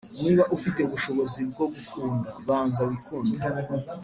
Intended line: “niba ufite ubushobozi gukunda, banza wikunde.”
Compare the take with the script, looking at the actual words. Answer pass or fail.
fail